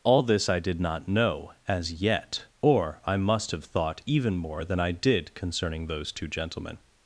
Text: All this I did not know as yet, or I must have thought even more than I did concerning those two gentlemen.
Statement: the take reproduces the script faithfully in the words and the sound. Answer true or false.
true